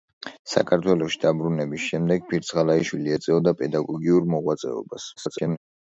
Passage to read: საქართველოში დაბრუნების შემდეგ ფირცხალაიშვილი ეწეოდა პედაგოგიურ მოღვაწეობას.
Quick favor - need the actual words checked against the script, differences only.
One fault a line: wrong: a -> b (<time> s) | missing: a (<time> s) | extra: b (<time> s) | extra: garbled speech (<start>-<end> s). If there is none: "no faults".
extra: garbled speech (5.2-5.6 s)